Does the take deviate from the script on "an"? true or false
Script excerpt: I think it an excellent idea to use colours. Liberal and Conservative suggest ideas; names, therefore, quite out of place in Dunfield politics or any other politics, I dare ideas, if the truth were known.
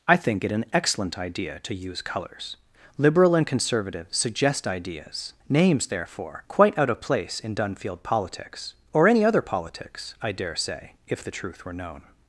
false